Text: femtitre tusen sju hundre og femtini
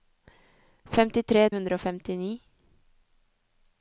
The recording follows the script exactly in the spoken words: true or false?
false